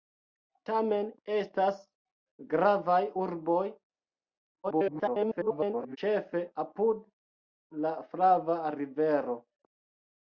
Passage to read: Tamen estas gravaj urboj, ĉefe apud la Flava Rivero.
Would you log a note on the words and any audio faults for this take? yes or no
yes